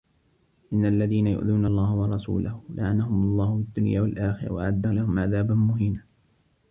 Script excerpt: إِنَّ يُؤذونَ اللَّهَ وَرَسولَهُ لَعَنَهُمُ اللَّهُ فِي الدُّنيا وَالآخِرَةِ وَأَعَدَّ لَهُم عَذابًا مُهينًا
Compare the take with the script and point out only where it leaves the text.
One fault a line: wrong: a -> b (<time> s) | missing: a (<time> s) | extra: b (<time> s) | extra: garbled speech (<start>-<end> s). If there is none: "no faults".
extra: الَّذينَ (0.8 s)